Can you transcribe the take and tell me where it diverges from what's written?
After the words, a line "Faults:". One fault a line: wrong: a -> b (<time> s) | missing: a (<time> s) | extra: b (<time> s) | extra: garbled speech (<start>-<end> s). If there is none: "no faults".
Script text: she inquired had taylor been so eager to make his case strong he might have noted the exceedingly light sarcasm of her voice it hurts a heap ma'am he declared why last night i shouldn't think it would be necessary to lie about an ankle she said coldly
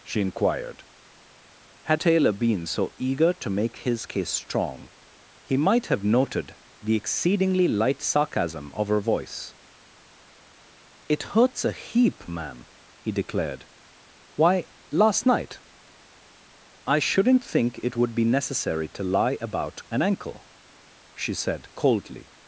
she inquired had taylor been so eager to make his case strong he might have noted the exceedingly light sarcasm of her voice it hurts a heap ma'am he declared why last night i shouldn't think it would be necessary to lie about an ankle she said coldly
Faults:
no faults